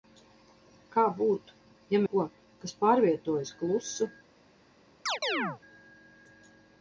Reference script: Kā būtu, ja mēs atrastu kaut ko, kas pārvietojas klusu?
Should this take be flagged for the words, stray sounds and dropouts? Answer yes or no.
yes